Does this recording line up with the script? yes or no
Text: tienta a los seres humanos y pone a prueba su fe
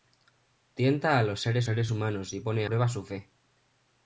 no